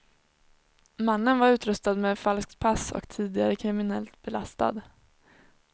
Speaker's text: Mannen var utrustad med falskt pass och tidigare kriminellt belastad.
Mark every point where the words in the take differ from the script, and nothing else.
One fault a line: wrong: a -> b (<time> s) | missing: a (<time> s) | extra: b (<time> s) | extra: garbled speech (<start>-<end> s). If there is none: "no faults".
no faults